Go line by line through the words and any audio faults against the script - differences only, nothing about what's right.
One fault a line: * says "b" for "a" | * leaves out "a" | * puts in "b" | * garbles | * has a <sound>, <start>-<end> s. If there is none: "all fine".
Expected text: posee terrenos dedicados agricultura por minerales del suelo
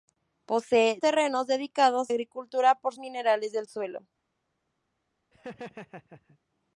* has a laugh, 5.3-6.4 s